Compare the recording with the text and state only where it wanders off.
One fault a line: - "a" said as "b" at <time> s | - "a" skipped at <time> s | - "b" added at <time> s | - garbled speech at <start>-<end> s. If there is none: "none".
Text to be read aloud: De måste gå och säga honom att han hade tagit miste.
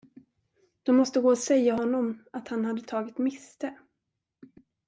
none